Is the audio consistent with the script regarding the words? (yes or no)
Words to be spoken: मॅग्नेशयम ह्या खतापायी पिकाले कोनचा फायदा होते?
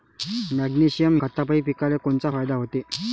no